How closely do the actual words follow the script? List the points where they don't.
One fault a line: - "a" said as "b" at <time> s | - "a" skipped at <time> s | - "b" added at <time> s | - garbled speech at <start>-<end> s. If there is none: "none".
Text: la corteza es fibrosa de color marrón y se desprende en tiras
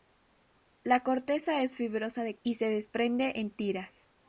- "color marrón" skipped at 2.4 s